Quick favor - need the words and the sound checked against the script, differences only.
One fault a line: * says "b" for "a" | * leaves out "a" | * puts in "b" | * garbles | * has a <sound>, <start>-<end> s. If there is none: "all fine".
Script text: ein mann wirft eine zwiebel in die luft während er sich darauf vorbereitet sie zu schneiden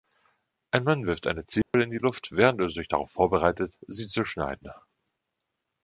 * has a dropout, 1.6-1.7 s